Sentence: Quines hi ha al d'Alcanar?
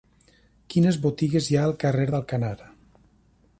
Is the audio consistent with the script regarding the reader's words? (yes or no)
no